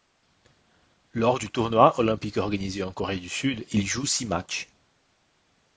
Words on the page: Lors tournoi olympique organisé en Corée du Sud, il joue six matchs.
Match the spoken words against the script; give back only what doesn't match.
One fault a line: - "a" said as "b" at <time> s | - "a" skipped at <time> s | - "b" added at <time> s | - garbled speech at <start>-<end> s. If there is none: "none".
- "du" added at 1.4 s